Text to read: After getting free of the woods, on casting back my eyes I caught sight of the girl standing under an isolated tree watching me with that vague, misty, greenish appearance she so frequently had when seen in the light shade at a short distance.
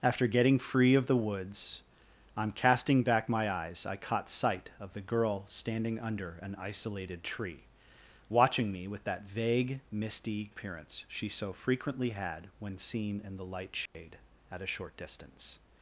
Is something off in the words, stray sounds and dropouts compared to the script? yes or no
yes